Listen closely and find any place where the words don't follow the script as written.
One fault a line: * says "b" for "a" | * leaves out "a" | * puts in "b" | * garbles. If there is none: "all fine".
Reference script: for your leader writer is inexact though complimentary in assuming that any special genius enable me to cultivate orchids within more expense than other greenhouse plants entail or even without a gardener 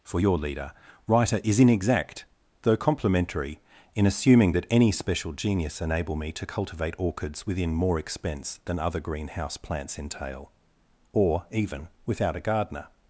all fine